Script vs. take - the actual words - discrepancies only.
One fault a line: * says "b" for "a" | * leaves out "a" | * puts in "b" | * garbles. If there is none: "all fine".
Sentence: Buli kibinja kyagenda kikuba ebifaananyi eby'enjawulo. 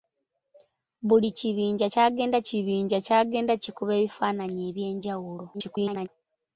* puts in "kibinja kyagenda"
* garbles